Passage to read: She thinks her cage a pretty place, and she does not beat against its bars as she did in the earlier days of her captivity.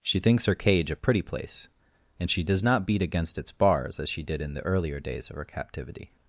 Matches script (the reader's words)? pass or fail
pass